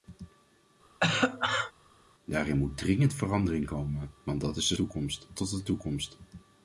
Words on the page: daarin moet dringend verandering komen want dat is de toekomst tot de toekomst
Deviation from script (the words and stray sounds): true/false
true